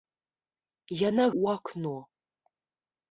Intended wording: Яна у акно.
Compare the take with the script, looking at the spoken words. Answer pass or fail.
pass